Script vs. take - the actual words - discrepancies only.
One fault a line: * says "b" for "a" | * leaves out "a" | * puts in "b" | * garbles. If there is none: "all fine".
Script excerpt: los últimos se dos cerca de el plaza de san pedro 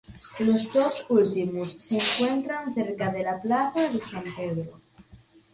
* puts in "dos"
* says "encuentran" for "dos"
* says "la" for "el"